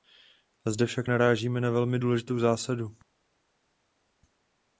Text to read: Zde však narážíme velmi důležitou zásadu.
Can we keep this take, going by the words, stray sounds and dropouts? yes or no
no